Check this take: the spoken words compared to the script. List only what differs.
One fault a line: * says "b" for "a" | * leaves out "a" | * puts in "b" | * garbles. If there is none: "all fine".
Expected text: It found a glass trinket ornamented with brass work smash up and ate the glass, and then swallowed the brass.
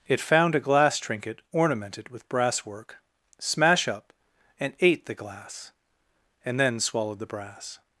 all fine